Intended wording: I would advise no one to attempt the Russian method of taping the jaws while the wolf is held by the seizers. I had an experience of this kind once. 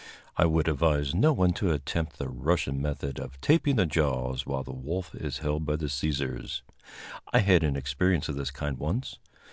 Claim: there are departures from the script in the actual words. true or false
false